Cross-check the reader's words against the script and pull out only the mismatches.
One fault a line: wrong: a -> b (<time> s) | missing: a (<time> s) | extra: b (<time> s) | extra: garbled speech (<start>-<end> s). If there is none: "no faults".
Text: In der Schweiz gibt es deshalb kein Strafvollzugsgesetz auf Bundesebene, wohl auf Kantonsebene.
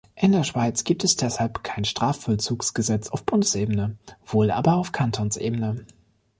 extra: aber (4.5 s)